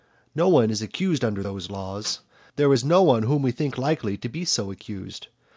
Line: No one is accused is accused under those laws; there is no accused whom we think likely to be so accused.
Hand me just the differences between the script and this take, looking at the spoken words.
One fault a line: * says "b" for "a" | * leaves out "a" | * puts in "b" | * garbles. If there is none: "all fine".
* leaves out "is accused"
* says "one" for "accused"